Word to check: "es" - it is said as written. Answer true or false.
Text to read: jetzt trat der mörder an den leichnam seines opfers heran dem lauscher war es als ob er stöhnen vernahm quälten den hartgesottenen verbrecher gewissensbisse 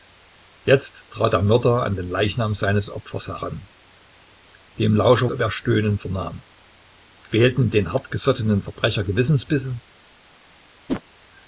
false